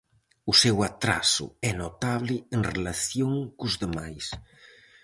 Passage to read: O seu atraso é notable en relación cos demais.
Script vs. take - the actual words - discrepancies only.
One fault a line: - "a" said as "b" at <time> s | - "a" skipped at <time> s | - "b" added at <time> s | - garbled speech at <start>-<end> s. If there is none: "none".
none